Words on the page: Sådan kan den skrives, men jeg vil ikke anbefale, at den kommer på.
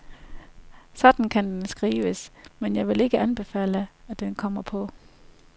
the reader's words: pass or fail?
pass